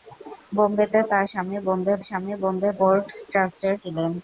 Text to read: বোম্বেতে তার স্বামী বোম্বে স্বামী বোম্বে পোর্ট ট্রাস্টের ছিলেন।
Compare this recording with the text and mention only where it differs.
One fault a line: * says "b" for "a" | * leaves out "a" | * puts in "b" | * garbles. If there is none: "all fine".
all fine